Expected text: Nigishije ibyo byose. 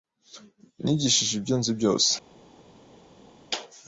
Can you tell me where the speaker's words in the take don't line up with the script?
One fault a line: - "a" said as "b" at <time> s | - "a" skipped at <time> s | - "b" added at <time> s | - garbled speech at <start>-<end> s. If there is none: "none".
- "nzi" added at 1.6 s